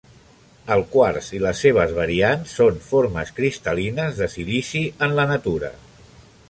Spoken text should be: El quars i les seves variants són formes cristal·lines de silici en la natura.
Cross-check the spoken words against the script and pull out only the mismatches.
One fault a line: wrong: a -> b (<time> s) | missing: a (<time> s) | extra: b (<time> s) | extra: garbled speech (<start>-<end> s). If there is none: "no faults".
no faults